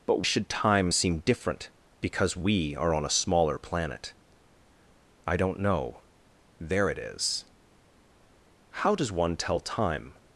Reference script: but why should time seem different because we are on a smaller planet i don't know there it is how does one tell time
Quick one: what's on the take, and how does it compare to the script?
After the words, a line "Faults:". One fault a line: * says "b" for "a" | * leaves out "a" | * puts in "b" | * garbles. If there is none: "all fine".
but should time seem different because we are on a smaller planet i don't know there it is how does one tell time
Faults:
* leaves out "why"